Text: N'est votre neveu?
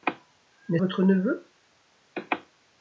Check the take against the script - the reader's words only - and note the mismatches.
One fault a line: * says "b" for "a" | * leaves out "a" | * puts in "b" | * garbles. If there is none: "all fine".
all fine